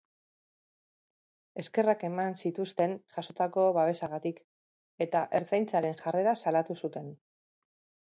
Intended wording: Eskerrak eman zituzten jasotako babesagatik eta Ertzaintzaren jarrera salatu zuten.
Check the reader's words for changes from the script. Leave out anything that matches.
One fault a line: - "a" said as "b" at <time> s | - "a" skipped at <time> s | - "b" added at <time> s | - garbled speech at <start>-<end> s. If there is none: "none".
none